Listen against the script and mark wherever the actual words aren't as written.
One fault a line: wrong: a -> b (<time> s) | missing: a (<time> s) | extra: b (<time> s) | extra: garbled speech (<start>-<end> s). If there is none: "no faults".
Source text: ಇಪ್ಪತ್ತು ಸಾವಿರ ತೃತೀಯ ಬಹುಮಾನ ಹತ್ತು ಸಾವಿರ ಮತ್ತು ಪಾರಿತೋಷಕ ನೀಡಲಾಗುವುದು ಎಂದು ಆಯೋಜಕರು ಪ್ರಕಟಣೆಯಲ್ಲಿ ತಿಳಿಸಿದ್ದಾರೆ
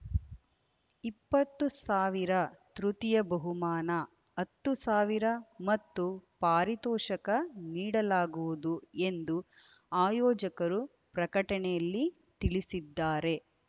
no faults